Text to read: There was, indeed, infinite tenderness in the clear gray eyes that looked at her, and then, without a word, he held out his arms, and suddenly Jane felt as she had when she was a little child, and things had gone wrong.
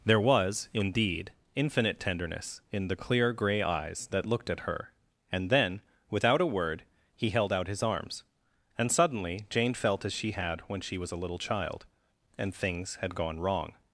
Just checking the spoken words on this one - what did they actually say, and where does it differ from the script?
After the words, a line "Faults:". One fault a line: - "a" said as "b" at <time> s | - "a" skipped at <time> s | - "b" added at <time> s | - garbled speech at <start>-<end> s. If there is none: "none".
There was, indeed, infinite tenderness in the clear gray eyes that looked at her, and then, without a word, he held out his arms, and suddenly Jane felt as she had when she was a little child, and things had gone wrong.
Faults:
none